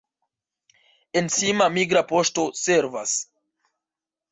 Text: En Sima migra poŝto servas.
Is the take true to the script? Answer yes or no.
yes